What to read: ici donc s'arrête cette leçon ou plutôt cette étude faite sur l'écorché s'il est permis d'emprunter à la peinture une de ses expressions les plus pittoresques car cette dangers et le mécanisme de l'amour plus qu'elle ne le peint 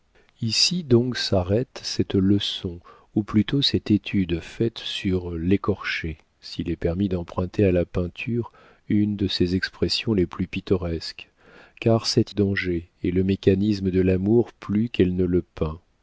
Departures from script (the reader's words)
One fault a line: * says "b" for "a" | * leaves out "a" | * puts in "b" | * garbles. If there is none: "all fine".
all fine